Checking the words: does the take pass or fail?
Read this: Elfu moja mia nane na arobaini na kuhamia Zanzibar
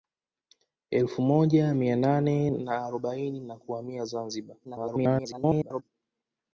fail